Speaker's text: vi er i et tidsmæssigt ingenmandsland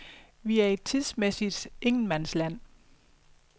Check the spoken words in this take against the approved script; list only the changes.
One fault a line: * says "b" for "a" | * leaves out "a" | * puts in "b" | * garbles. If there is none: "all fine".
all fine